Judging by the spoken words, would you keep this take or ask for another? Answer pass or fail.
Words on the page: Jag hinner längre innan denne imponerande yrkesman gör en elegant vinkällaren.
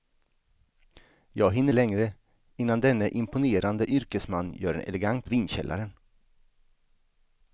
pass